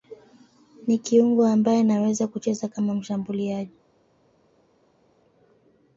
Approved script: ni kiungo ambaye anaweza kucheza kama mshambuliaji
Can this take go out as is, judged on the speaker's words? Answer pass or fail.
pass